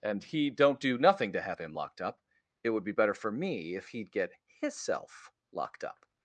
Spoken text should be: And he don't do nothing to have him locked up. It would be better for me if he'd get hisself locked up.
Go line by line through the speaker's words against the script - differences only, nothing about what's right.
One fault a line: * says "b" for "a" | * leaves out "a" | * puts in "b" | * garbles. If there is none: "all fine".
all fine